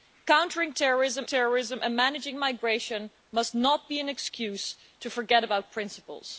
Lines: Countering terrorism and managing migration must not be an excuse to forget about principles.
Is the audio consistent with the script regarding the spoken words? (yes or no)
no